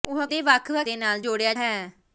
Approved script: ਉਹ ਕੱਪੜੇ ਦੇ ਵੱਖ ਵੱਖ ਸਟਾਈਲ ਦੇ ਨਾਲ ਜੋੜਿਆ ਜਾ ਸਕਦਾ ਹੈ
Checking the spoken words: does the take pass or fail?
fail